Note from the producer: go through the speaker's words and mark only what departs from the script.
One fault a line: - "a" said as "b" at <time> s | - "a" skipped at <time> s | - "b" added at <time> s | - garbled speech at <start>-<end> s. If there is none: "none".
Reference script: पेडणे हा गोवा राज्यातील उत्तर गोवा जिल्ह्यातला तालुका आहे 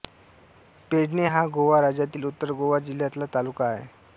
none